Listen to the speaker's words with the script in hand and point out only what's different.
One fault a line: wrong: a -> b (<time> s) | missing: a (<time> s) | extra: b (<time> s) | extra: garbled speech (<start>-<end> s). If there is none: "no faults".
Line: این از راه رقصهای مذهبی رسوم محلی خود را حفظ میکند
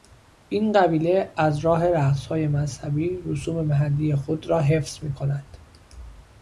extra: قبیله (0.7 s)